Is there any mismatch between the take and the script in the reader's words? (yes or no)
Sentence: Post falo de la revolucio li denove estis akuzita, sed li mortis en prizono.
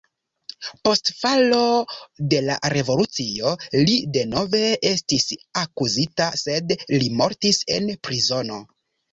no